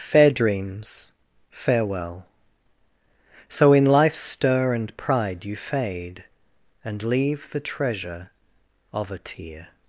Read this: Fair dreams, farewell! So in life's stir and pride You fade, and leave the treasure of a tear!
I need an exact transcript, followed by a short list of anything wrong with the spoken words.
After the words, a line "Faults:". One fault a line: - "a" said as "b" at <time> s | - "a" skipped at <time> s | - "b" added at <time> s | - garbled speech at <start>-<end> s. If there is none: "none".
Fair dreams, farewell! So in life's stir and pride You fade, and leave the treasure of a tear!
Faults:
none